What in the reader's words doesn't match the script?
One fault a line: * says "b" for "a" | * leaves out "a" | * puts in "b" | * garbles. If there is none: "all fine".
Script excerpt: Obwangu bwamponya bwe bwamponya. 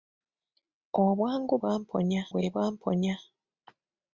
all fine